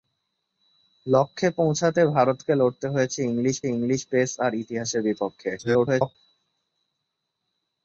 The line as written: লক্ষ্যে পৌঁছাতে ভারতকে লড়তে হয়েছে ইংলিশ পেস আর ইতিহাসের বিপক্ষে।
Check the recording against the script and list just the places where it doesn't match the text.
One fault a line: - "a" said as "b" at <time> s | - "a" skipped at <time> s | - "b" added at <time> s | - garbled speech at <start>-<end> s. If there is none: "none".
- "ইংলিশ" added at 3.7 s
- garbled speech at 5.6-6.2 s